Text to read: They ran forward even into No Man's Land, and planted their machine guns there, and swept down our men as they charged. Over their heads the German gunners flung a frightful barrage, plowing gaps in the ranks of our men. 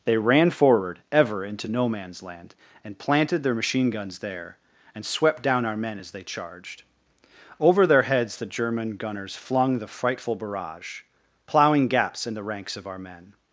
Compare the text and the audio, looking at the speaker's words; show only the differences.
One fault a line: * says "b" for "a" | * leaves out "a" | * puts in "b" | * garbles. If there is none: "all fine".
* says "ever" for "even"
* says "the" for "a"